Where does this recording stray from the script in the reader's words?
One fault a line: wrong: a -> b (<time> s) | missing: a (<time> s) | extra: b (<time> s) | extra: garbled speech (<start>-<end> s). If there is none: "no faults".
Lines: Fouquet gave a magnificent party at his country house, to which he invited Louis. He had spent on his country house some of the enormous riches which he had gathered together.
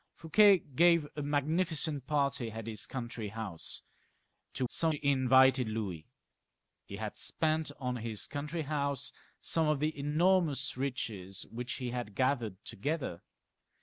wrong: which -> some (4.7 s)